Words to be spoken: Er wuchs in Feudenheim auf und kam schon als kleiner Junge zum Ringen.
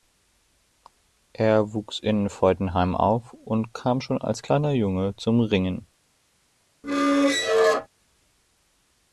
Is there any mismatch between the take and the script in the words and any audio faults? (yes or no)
yes